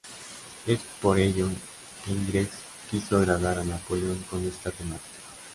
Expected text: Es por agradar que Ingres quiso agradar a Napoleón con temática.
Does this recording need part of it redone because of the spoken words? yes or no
yes